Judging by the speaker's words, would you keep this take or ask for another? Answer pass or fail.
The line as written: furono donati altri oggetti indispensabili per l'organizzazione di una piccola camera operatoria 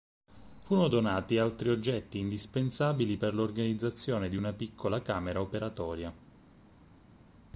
pass